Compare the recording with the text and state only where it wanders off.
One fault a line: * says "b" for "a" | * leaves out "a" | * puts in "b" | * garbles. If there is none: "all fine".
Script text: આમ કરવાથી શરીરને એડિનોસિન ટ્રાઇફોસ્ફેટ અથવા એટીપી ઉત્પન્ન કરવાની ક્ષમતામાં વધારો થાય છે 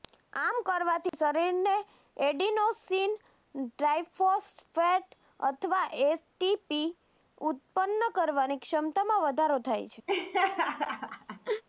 all fine